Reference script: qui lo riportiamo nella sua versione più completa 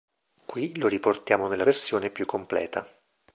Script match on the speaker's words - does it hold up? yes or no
no